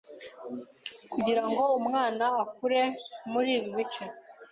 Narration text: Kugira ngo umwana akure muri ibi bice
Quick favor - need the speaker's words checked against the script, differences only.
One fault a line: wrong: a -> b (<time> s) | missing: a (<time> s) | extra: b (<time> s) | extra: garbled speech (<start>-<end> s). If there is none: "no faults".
no faults